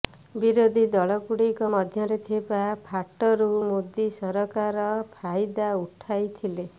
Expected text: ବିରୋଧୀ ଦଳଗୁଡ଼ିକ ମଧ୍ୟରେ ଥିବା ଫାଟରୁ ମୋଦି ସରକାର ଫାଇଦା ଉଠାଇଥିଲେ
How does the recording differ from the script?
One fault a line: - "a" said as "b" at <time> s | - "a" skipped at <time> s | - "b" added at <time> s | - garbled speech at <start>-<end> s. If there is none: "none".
none